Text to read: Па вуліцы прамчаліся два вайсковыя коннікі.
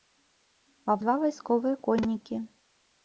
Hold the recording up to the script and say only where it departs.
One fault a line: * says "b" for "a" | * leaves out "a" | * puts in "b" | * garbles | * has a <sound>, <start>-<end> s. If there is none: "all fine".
* leaves out "вуліцы прамчаліся"